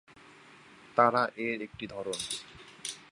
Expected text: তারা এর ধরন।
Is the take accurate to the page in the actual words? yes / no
no